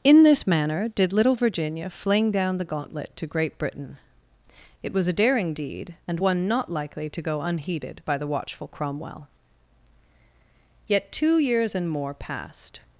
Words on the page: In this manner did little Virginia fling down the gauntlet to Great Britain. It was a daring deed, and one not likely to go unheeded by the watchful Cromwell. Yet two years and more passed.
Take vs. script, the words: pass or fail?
pass